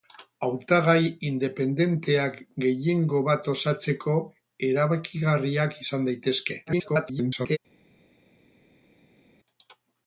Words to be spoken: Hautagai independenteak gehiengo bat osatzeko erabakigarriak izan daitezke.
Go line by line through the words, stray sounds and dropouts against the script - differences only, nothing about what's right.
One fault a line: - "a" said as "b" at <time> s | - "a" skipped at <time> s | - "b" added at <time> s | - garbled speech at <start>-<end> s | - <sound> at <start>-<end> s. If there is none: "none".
- garbled speech at 6.7-7.6 s